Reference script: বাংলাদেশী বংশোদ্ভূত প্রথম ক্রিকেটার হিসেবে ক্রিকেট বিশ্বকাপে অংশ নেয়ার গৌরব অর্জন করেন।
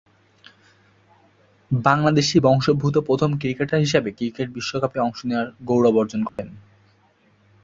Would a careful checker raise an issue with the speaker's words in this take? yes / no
no